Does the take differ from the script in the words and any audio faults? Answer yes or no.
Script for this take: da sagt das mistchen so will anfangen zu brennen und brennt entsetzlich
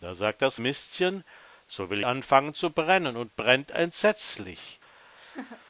yes